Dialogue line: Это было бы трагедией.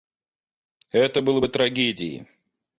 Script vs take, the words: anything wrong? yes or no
no